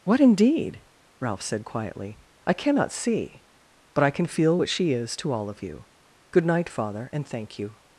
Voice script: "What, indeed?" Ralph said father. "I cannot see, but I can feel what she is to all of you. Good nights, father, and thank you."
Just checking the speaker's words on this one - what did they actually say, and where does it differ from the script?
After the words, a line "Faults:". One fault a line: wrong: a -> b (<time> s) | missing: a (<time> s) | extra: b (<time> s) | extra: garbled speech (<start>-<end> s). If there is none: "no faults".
"What, indeed?" Ralph said quietly. "I cannot see, but I can feel what she is to all of you. Good night, father, and thank you."
Faults:
wrong: father -> quietly (1.6 s)
wrong: nights -> night (6.4 s)